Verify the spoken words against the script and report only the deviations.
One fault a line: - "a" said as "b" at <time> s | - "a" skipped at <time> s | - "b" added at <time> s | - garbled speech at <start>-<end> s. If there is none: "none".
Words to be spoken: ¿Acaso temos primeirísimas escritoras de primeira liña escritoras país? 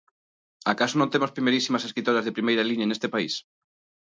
- "non" added at 1.0 s
- "escritoras" said as "neste" at 2.9 s